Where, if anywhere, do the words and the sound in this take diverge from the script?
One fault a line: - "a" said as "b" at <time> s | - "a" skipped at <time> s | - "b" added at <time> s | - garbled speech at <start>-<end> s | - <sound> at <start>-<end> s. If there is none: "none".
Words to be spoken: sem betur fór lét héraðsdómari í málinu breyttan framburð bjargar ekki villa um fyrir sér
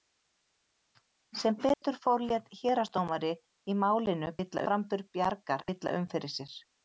- dropout at 1.7-1.8 s
- "breyttan" said as "villa" at 4.4 s
- "ekki" skipped at 5.7 s